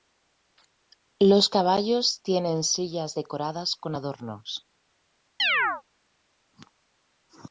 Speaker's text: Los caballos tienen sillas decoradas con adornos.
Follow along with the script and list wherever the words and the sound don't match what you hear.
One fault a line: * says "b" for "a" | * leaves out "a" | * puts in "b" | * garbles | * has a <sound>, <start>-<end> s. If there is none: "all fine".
* has a chirp, 5.4-5.8 s